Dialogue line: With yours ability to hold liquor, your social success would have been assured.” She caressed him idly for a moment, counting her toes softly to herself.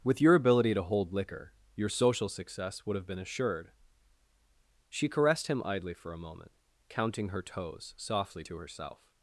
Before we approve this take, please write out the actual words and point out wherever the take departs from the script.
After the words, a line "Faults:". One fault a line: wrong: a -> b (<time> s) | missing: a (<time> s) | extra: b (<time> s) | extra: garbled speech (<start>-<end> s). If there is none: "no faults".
With your ability to hold liquor, your social success would have been assured.” She caressed him idly for a moment, counting her toes softly to herself.
Faults:
wrong: yours -> your (0.2 s)